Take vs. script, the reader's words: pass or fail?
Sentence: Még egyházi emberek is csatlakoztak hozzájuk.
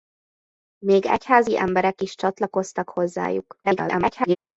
fail